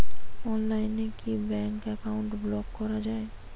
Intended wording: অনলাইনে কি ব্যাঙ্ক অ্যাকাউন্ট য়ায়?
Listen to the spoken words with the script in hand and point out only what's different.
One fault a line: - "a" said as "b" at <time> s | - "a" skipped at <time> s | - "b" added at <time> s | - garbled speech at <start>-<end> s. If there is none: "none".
- "ব্লক করা" added at 2.4 s